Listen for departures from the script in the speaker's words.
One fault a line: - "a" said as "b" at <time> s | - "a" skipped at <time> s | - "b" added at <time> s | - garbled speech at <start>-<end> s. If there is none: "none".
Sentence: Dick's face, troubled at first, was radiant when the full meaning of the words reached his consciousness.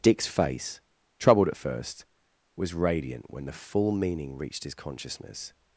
- "of the words" skipped at 4.4 s